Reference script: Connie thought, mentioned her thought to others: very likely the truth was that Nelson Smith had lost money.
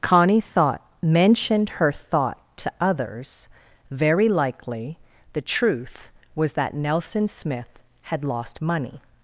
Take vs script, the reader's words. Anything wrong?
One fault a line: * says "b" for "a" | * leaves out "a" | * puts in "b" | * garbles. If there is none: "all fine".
all fine